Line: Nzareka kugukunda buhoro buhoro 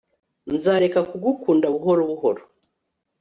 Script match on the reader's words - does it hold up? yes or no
yes